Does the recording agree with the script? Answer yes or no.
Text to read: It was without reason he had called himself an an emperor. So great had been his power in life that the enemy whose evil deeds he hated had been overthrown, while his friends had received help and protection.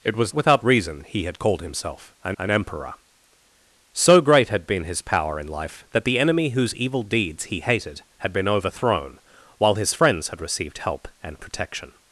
yes